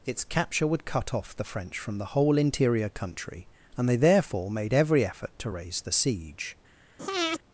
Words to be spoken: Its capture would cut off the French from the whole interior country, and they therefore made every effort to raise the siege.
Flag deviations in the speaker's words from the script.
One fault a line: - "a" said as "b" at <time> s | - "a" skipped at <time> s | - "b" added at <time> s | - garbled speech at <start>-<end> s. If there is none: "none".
none